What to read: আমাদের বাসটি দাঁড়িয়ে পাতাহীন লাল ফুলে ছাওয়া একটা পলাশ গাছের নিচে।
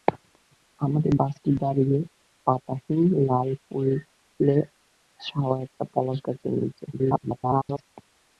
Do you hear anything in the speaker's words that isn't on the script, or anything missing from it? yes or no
yes